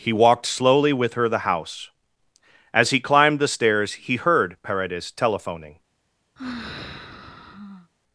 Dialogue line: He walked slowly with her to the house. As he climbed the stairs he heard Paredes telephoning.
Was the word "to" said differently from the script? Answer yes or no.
yes